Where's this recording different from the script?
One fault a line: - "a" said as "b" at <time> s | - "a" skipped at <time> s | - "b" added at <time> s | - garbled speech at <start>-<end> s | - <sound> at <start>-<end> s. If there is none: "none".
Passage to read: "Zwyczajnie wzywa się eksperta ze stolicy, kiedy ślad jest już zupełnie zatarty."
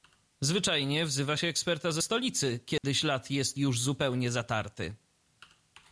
- dropout at 2.8-2.8 s